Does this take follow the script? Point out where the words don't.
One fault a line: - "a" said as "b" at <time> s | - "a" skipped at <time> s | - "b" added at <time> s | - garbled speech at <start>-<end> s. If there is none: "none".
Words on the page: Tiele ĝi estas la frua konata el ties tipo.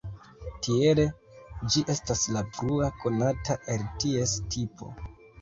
none